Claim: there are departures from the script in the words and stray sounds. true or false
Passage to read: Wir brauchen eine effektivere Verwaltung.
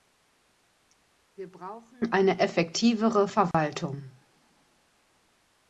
true